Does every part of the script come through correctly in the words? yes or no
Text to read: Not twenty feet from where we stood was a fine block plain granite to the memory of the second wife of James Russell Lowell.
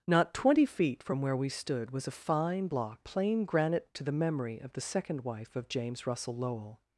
yes